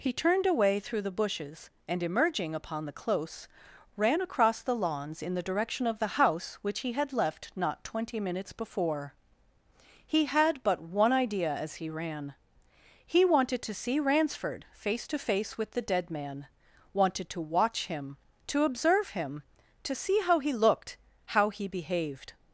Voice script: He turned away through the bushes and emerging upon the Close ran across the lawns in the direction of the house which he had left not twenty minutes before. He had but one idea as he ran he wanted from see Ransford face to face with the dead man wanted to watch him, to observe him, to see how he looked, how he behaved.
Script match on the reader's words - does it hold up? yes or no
no